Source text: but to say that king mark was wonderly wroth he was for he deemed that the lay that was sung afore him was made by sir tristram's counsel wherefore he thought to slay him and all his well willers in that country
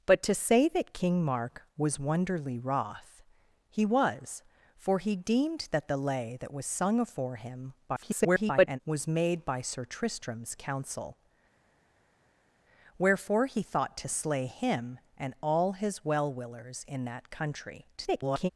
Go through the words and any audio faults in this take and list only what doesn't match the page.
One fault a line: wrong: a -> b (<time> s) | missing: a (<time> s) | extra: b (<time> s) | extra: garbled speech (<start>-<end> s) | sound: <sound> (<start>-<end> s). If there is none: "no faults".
extra: garbled speech (7.9-8.8 s)
extra: garbled speech (18.0-18.5 s)